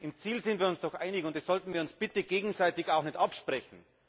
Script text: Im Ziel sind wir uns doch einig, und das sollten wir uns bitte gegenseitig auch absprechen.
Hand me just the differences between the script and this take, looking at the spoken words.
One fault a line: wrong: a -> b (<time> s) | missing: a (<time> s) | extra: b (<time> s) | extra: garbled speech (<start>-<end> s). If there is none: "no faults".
extra: nicht (3.0 s)